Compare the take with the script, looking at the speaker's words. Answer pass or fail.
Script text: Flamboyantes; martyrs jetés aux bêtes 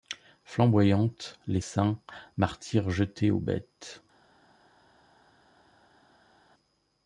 fail